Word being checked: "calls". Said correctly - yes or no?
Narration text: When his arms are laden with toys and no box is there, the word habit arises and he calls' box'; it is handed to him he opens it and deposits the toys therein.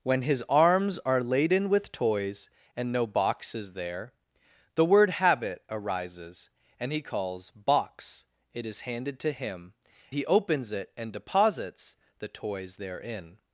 yes